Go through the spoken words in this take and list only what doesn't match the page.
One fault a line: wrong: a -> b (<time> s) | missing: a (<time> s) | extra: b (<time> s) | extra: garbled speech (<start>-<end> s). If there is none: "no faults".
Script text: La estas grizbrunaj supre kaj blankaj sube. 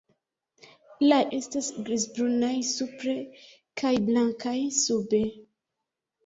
no faults